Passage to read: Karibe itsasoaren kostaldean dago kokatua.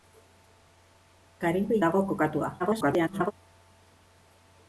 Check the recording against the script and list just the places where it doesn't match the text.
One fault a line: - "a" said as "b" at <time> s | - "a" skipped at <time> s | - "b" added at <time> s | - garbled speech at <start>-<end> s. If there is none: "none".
- "itsasoaren kostaldean" skipped at 1.8 s
- garbled speech at 2.6-3.3 s